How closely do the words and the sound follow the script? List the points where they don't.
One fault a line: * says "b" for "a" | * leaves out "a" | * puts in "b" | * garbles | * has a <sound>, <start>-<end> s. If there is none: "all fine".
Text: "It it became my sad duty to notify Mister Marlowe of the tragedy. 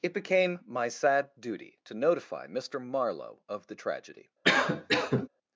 * leaves out "it"
* has a cough, 4.4-5.3 s